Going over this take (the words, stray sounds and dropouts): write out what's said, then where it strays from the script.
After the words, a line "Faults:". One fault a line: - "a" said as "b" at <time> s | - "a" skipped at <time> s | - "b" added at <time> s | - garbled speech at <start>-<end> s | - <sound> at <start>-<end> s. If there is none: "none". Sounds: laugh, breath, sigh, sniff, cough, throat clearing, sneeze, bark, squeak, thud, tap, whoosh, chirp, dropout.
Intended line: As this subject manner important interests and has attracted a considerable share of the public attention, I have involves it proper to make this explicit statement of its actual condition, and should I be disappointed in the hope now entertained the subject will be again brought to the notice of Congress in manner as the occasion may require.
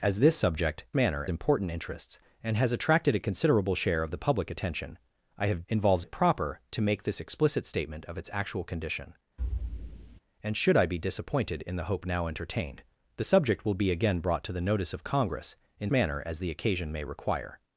As this subject manner important interests and has attracted a considerable share of the public attention, I have involves it proper to make this explicit statement of its actual condition, and should I be disappointed in the hope now entertained the subject will be again brought to the notice of Congress in manner as the occasion may require.
Faults:
- thud at 9.4-10.2 s